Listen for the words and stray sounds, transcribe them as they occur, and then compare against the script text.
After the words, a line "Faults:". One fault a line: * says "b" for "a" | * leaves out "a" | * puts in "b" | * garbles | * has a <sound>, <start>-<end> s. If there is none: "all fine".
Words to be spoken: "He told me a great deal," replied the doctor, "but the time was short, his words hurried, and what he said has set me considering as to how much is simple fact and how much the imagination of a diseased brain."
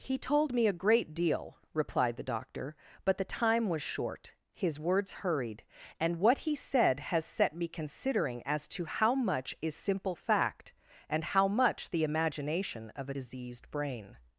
"He told me a great deal," replied the doctor, "but the time was short, his words hurried, and what he said has set me considering as to how much is simple fact and how much the imagination of a diseased brain."
Faults:
all fine